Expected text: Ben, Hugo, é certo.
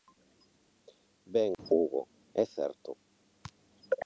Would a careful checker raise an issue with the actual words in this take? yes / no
no